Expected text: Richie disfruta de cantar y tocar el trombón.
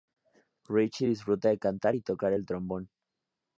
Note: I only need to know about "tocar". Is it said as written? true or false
true